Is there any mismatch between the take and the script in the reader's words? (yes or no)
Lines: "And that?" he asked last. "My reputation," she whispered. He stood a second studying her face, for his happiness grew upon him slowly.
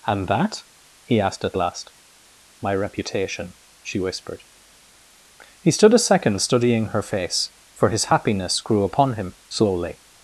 yes